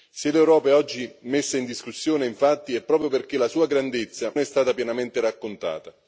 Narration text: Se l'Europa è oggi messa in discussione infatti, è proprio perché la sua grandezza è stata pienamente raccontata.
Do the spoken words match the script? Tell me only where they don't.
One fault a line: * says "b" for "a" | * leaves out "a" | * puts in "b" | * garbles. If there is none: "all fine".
all fine